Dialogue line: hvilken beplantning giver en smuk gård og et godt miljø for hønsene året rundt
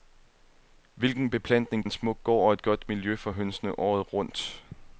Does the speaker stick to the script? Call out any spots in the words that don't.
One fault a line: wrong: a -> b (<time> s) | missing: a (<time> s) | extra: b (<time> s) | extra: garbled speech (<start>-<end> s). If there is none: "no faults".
missing: giver (1.9 s)